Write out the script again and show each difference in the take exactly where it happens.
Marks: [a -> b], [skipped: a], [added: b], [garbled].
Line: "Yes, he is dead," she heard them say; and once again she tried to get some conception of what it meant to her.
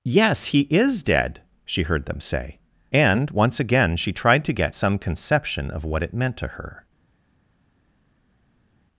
"Yes, he is dead," she heard them say; and once again she tried to get some conception of what it meant to her.